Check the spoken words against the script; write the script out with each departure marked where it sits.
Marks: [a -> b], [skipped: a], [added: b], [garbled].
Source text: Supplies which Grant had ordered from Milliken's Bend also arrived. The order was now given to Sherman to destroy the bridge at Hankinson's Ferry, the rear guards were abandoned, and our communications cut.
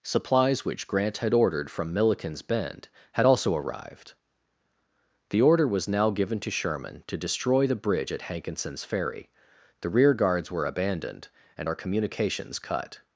Supplies which Grant had ordered from Milliken's Bend [added: had] also arrived. The order was now given to Sherman to destroy the bridge at Hankinson's Ferry, the rear guards were abandoned, and our communications cut.